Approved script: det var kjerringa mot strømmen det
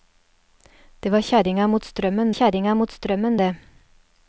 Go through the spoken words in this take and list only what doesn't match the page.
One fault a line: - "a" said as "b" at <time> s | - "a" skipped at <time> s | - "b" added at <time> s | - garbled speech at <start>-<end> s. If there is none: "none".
- "kjerringa mot strømmen" added at 2.3 s